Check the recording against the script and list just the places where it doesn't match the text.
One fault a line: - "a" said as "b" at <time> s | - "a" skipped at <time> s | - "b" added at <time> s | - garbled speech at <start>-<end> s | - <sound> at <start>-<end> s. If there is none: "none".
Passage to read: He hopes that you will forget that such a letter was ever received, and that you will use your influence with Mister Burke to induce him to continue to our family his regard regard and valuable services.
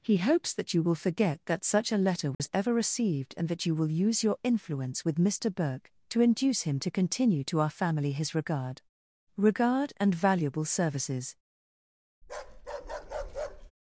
- dropout at 2.3-2.4 s
- bark at 12.2-13.7 s